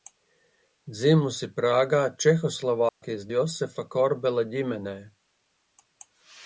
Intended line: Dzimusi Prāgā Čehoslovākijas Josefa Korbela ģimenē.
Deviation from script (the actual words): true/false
false